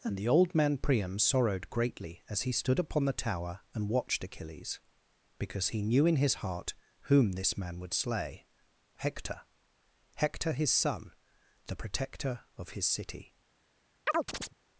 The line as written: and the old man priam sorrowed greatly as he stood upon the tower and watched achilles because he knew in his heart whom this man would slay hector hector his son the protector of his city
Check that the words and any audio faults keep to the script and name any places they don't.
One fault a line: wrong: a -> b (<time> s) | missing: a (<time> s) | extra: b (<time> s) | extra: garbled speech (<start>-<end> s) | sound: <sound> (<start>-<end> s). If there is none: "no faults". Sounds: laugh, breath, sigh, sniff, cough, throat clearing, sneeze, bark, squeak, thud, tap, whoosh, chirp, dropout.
sound: chirp (14.1-14.6 s)